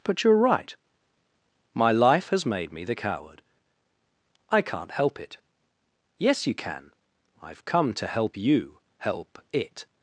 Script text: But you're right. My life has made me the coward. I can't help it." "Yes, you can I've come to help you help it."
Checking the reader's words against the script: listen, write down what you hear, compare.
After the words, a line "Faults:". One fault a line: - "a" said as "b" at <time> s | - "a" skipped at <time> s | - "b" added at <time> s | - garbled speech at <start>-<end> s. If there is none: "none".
But you're right. My life has made me the coward. I can't help it." "Yes, you can I've come to help you help it."
Faults:
none